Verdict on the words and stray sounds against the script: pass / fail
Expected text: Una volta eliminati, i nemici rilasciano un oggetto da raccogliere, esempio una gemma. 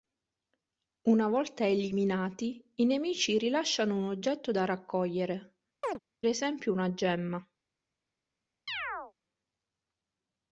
fail